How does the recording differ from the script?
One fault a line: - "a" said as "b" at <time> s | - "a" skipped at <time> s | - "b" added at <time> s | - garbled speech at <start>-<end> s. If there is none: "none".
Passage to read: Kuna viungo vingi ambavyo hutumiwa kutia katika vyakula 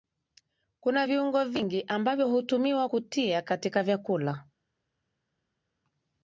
none